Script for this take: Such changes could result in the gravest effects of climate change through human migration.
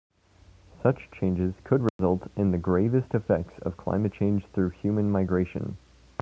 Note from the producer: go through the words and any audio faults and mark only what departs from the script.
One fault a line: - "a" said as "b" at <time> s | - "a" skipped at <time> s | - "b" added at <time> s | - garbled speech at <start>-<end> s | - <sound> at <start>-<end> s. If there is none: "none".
- dropout at 1.9-2.0 s